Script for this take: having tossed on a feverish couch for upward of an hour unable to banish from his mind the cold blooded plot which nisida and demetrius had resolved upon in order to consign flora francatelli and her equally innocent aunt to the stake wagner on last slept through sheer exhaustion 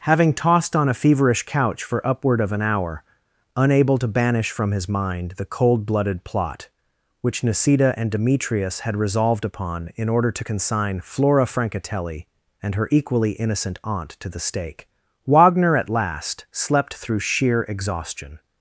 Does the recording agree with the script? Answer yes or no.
no